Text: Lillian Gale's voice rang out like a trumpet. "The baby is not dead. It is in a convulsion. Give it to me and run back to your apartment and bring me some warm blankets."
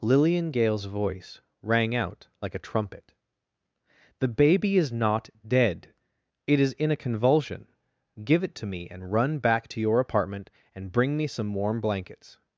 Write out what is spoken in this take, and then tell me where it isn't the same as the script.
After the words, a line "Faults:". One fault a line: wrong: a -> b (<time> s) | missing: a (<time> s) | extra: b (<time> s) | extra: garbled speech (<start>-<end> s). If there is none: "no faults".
Lillian Gale's voice rang out like a trumpet. "The baby is not dead. It is in a convulsion. Give it to me and run back to your apartment and bring me some warm blankets."
Faults:
no faults